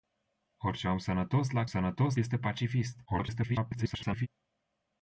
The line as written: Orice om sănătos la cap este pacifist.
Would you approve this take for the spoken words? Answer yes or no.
no